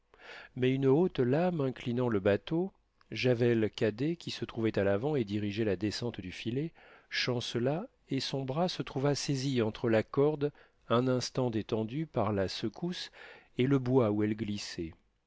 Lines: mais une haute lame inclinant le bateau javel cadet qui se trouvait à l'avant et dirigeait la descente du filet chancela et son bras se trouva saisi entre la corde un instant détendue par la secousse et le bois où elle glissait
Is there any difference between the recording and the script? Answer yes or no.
no